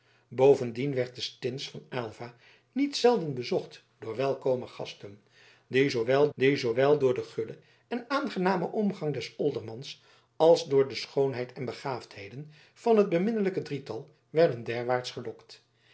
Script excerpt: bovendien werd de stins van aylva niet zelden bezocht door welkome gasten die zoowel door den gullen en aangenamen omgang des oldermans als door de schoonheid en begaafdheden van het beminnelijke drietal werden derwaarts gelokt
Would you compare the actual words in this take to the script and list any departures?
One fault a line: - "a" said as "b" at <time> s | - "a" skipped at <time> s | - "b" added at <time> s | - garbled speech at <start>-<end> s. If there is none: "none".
- "die zoowel" added at 6.3 s